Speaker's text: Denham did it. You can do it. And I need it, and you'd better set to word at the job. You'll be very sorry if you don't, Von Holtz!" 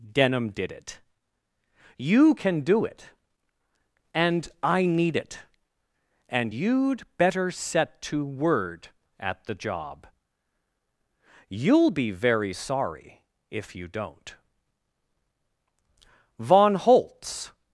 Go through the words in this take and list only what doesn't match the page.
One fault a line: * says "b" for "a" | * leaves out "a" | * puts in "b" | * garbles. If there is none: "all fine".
all fine